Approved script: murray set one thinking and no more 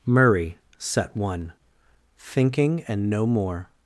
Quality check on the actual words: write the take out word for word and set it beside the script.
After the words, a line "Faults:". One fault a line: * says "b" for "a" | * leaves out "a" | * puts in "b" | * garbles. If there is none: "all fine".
murray set one thinking and no more
Faults:
all fine